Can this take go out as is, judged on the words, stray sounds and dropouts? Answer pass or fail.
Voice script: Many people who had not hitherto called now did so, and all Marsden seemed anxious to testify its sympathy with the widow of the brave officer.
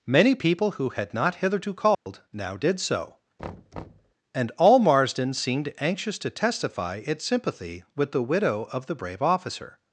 fail